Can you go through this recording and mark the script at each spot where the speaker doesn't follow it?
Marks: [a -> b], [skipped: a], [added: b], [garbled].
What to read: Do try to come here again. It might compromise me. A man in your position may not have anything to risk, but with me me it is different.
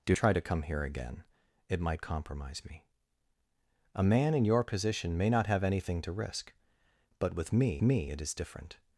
Do try to come here again. It might compromise me. A man in your position may not have anything to risk, but with me me it is different.